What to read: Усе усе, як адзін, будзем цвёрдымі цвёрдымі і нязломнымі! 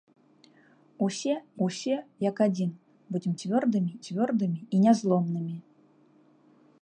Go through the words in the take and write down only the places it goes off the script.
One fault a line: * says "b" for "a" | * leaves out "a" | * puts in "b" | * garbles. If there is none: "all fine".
all fine